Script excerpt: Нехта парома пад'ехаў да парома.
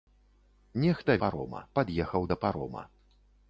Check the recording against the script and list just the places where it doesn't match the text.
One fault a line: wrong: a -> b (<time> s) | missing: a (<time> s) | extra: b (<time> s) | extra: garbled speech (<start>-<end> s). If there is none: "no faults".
no faults